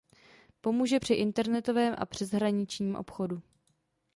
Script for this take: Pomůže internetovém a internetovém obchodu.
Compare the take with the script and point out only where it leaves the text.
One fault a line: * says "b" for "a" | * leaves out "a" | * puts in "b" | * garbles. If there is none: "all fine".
* puts in "při"
* says "přeshraničním" for "internetovém"